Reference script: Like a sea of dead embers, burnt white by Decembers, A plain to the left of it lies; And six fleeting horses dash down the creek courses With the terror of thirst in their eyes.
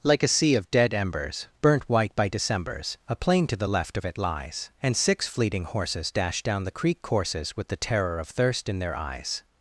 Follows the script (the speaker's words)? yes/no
yes